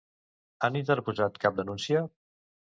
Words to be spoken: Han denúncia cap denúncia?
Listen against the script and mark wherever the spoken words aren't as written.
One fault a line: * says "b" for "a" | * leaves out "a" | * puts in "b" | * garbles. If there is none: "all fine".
* says "interposat" for "denúncia"